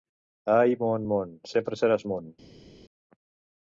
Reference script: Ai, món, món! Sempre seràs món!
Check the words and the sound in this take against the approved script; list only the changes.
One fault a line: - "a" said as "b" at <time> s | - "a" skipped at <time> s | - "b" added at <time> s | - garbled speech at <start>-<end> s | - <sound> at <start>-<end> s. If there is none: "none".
none